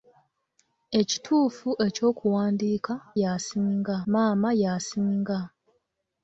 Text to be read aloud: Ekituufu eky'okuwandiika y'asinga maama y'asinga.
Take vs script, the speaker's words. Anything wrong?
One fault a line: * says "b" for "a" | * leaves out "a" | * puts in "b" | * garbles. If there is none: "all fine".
all fine